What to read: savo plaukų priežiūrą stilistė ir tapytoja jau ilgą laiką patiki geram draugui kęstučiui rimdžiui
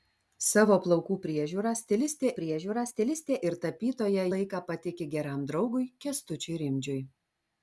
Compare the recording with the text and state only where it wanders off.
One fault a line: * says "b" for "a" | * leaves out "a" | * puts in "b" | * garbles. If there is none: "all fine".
* puts in "priežiūrą stilistė"
* leaves out "jau ilgą"